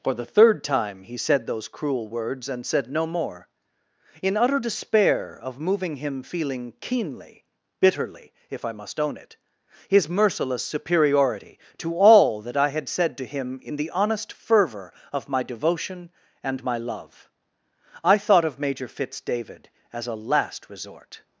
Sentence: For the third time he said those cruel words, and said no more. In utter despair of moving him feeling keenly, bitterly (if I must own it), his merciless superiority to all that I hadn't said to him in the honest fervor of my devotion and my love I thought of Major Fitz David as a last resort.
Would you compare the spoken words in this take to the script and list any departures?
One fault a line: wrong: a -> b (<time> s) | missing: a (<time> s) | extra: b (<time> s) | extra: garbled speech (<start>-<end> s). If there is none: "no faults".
wrong: hadn't -> had (12.7 s)